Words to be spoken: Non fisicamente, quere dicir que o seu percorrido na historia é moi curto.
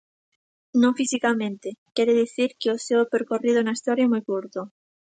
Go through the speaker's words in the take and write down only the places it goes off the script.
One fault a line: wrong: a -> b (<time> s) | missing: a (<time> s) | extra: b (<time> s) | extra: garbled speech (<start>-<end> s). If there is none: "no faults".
no faults